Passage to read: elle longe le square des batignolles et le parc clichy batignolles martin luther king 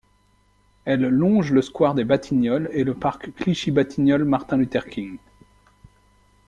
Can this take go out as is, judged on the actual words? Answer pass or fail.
pass